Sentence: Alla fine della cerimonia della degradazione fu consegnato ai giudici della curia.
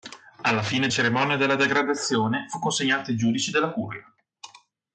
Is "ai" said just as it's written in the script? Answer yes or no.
yes